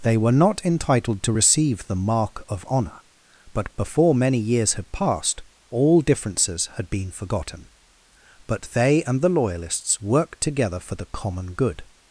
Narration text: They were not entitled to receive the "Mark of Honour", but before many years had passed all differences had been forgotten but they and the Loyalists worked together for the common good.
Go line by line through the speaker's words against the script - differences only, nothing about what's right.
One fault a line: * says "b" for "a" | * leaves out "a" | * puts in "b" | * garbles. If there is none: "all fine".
all fine